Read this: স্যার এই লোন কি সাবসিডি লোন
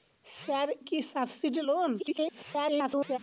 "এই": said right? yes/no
no